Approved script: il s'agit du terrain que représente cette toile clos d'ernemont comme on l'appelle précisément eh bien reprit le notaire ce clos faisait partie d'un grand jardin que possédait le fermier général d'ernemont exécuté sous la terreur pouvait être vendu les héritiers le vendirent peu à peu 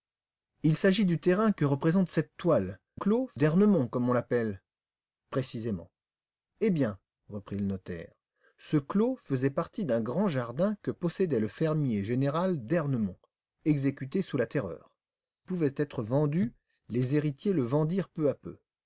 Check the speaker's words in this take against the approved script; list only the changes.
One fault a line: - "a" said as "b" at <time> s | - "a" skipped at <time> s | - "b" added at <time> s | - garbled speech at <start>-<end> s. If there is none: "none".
none